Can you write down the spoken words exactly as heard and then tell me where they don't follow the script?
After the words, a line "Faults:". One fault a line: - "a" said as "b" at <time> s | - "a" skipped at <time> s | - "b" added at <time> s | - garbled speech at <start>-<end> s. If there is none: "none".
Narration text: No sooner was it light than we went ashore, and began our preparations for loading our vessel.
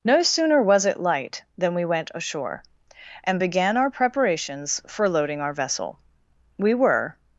No sooner was it light than we went ashore, and began our preparations for loading our vessel. We were
Faults:
- "We were" added at 6.6 s